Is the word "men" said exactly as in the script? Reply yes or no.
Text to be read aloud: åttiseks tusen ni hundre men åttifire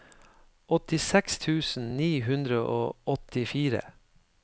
no